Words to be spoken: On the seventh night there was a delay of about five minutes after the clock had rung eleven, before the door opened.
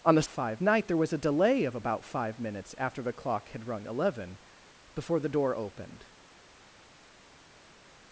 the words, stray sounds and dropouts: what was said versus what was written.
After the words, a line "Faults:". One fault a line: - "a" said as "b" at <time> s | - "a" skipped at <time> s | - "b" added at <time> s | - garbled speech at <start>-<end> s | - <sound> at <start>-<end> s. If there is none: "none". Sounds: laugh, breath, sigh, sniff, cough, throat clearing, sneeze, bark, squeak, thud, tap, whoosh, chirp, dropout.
On the five night there was a delay of about five minutes after the clock had rung eleven, before the door opened.
Faults:
- "seventh" said as "five" at 0.3 s